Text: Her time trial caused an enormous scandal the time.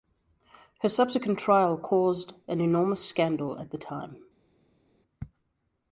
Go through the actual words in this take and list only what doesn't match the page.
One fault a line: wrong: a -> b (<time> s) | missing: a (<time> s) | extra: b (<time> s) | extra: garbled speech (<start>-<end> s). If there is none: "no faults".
wrong: time -> subsequent (0.9 s)
extra: at (3.6 s)